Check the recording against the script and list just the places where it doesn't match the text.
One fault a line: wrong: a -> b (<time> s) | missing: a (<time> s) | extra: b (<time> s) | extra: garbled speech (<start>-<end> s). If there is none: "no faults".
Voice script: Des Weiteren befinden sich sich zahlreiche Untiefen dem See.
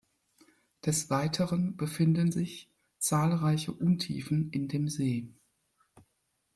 missing: sich (2.7 s)
extra: in (4.5 s)